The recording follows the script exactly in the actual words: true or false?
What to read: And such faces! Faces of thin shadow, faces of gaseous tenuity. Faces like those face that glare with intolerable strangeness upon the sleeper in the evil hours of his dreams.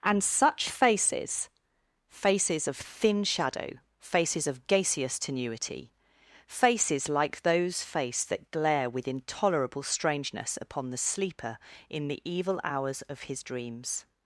true